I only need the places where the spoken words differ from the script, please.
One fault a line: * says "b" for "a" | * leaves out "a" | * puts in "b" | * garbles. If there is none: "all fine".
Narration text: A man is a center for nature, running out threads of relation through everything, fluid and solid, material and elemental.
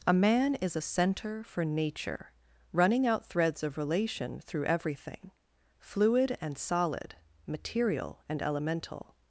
all fine